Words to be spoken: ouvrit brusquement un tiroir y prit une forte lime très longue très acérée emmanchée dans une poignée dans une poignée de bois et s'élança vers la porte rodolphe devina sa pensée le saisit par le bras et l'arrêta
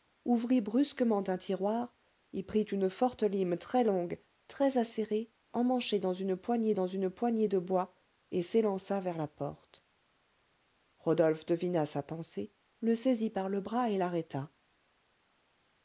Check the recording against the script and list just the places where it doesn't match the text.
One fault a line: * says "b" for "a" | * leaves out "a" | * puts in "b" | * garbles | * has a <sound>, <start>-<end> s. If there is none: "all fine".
all fine